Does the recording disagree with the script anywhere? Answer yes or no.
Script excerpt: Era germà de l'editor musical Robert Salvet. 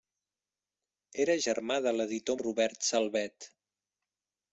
yes